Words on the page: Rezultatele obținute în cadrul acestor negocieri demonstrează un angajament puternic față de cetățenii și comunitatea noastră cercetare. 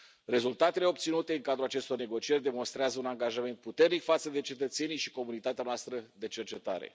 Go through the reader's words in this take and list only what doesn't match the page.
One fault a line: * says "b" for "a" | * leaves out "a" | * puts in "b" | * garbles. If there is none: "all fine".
* puts in "de"